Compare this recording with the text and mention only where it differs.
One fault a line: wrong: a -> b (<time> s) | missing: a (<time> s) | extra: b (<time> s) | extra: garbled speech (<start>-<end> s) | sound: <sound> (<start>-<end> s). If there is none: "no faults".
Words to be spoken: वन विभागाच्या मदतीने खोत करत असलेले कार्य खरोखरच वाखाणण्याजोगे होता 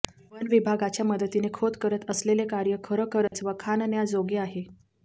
sound: dropout (3.3-3.3 s)
wrong: होता -> आहे (4.4 s)